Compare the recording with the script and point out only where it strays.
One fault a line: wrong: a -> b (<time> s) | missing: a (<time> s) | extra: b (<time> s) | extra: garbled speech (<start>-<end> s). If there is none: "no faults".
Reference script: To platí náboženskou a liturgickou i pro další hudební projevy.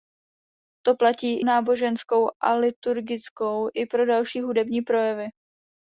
no faults